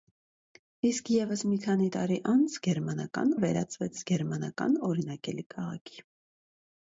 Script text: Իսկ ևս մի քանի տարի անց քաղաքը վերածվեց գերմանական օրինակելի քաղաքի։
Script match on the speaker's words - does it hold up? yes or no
no